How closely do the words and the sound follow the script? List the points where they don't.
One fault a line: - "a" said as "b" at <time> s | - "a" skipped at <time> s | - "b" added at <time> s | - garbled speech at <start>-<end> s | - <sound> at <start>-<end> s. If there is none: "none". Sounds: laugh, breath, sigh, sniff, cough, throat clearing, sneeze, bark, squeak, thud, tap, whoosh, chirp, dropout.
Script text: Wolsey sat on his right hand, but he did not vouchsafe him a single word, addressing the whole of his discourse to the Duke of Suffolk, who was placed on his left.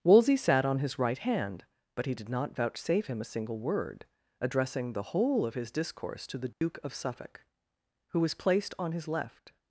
- dropout at 6.5-6.6 s